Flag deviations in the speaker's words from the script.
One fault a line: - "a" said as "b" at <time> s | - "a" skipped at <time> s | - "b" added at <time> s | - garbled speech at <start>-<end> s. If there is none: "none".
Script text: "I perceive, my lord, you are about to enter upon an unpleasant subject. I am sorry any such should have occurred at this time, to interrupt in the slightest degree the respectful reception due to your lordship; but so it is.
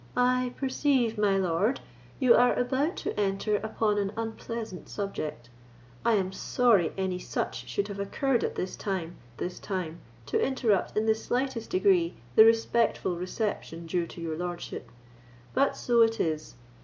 - "this time" added at 9.4 s